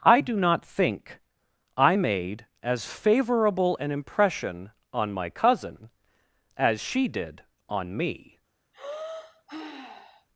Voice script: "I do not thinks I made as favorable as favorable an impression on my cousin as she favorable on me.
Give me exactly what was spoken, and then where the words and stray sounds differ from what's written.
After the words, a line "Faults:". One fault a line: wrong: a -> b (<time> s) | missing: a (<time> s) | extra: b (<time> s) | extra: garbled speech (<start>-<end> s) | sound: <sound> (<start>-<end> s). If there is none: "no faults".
"I do not think I made as favorable an impression on my cousin as she did on me.
Faults:
wrong: thinks -> think (0.7 s)
missing: as favorable (3.8 s)
wrong: favorable -> did (7.1 s)
sound: sigh (8.7-10.3 s)